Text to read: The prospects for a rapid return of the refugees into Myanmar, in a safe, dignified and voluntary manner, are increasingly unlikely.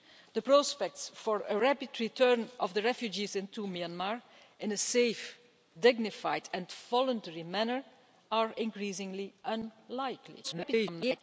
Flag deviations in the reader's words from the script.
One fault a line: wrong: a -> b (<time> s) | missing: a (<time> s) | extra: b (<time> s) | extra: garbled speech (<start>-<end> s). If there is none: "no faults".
extra: garbled speech (10.4-11.2 s)